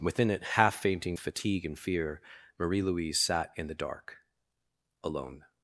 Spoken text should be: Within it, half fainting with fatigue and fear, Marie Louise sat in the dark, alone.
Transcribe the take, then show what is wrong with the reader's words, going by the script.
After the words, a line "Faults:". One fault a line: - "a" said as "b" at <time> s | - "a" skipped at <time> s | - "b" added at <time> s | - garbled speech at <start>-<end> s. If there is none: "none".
Within it, half fainting fatigue and fear, Marie Louise sat in the dark, alone.
Faults:
- "with" skipped at 1.1 s